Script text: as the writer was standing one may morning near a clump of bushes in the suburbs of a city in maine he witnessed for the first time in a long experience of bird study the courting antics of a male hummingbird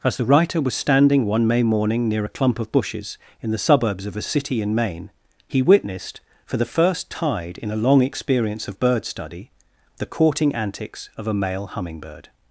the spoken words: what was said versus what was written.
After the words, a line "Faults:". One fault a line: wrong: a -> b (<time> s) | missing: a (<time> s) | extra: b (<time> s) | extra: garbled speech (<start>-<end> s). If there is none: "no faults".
as the writer was standing one may morning near a clump of bushes in the suburbs of a city in maine he witnessed for the first tide in a long experience of bird study the courting antics of a male hummingbird
Faults:
wrong: time -> tide (7.1 s)